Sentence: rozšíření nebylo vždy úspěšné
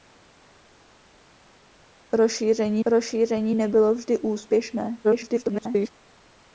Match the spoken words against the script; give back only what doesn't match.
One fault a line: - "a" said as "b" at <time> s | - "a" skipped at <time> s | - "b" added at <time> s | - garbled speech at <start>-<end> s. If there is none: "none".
- "rozšíření" added at 2.9 s
- garbled speech at 5.0-5.9 s